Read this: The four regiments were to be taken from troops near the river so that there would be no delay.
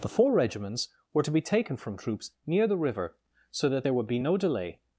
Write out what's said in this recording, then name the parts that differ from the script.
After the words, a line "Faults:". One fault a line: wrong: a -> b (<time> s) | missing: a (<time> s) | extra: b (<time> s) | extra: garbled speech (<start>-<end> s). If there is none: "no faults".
The four regiments were to be taken from troops near the river so that there would be no delay.
Faults:
no faults